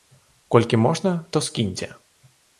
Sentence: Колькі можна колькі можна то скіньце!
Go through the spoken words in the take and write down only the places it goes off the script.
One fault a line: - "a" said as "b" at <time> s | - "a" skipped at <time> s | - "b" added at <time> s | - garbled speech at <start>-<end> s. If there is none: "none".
- "колькі можна" skipped at 1.2 s